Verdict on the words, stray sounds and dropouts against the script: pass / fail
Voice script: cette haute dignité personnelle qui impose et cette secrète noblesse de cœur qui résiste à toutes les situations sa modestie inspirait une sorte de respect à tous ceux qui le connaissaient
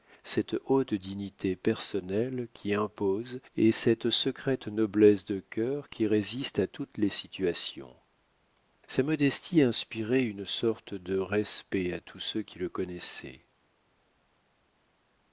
pass